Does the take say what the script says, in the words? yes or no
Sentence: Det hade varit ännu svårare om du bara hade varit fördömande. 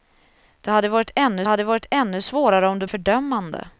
no